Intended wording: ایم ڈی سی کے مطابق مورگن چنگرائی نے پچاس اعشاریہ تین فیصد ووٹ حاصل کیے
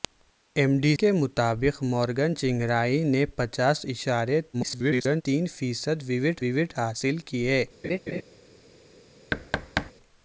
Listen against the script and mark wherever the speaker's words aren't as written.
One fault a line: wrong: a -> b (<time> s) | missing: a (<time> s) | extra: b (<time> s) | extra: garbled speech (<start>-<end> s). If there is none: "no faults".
missing: سی (0.9 s)
extra: garbled speech (4.5-5.2 s)
extra: ووٹ (6.4 s)